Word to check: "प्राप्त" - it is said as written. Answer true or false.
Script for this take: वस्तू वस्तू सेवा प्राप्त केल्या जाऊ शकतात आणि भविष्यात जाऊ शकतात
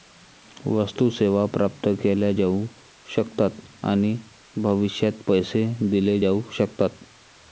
true